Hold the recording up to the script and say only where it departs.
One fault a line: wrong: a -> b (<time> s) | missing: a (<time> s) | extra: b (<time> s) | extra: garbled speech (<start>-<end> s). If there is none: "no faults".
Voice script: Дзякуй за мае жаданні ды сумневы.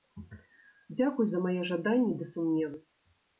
no faults